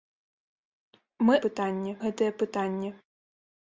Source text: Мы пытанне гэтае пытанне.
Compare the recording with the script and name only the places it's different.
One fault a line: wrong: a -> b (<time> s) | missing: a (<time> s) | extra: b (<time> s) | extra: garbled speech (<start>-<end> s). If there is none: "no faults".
no faults